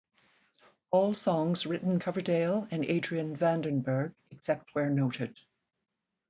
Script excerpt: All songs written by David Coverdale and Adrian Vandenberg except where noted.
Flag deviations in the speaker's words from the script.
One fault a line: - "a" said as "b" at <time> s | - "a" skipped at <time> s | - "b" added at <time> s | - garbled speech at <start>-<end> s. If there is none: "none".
- "by David" skipped at 2.0 s